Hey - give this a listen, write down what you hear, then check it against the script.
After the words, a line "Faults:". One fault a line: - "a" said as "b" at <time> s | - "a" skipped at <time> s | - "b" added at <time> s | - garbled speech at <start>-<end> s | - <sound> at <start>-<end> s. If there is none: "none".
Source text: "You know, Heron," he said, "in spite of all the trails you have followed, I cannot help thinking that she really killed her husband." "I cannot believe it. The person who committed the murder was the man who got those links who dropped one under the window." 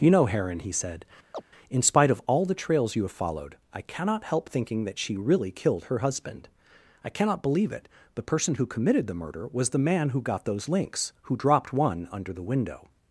"You know, Heron," he said, "in spite of all the trails you have followed, I cannot help thinking that she really killed her husband." "I cannot believe it. The person who committed the murder was the man who got those links who dropped one under the window."
Faults:
- chirp at 1.3-1.4 s